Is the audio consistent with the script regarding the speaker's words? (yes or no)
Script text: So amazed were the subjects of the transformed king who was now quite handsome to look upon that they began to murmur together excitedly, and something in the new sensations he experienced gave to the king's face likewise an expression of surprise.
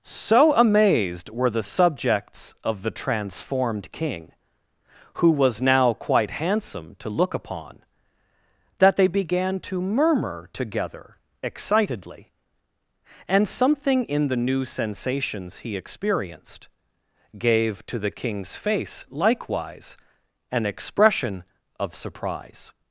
yes